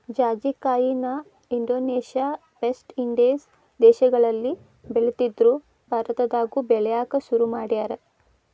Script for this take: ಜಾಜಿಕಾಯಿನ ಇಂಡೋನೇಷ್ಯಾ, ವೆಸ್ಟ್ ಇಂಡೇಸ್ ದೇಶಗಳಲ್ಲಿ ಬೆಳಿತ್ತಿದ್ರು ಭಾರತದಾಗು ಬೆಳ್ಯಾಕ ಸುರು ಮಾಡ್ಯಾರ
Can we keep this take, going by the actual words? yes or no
yes